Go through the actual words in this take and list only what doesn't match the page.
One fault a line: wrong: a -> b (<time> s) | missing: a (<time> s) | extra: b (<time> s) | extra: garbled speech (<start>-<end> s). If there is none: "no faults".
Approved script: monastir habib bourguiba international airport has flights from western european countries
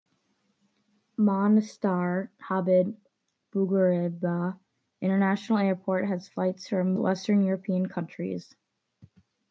no faults